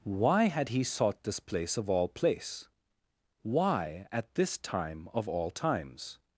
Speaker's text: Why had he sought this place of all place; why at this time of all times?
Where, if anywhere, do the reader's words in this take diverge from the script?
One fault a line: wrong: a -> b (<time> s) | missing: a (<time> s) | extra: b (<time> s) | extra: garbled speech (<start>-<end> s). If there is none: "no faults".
no faults